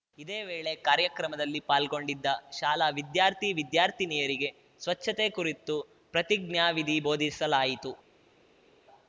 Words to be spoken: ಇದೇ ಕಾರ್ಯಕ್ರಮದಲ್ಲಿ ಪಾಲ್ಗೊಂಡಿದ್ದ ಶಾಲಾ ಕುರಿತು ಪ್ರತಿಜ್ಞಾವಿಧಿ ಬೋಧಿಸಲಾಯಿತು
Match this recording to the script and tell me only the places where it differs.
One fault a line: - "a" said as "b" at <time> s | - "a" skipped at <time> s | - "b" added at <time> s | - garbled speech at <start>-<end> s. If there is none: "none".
- "ವೇಳೆ" added at 0.4 s
- "ವಿದ್ಯಾರ್ಥಿ ವಿದ್ಯಾರ್ಥಿನಿಯರಿಗೆ ಸ್ವಚ್ಛತೆ" added at 3.0 s